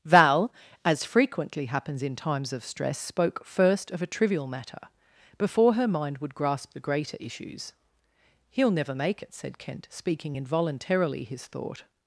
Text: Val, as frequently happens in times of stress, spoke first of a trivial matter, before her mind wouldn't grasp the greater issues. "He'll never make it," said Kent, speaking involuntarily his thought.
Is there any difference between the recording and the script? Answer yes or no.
yes